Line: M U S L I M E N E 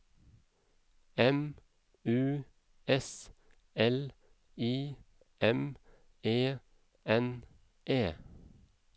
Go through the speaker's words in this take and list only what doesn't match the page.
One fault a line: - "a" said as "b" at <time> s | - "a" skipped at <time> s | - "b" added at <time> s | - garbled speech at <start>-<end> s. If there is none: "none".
none